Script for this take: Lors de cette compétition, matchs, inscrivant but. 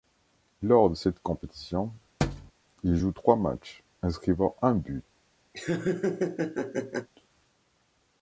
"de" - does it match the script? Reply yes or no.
yes